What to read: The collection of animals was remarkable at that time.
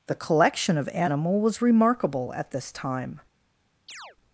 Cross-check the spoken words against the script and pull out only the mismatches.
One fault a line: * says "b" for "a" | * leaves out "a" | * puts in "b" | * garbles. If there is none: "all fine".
* says "animal" for "animals"
* says "this" for "that"